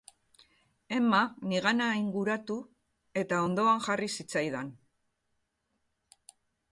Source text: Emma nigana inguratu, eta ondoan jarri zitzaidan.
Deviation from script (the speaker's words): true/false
false